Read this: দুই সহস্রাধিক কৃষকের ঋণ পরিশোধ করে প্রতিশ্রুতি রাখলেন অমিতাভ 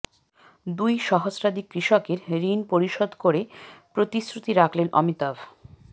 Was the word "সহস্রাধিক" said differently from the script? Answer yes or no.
no